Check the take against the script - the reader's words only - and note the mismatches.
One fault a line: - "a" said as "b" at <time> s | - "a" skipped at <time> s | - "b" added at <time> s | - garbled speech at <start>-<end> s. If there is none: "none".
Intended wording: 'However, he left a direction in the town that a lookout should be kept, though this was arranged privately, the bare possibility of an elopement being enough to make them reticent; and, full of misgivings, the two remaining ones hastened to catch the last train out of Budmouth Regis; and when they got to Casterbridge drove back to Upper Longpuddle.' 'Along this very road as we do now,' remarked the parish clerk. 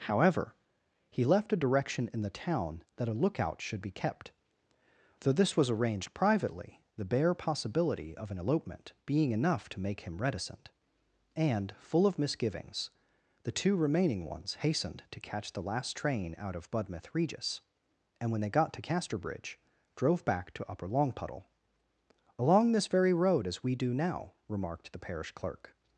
- "them" said as "him" at 10.0 s